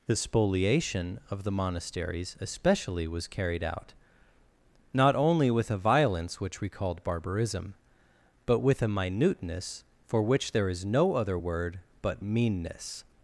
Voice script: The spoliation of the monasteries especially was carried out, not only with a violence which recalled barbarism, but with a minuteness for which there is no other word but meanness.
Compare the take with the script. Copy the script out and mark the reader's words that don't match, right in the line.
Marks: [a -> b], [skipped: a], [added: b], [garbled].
The spoliation of the monasteries especially was carried out, not only with a violence which recalled barbarism, but with a minuteness for which there is no other word but meanness.